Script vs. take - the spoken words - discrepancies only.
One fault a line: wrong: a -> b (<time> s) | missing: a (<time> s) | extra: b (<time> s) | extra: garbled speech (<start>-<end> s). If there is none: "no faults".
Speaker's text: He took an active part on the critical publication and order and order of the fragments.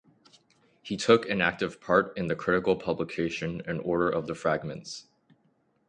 wrong: on -> in (2.1 s)
missing: and order (4.1 s)